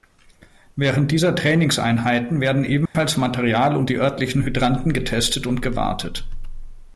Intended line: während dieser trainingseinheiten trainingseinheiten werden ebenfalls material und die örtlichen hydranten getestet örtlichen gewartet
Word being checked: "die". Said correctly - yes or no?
yes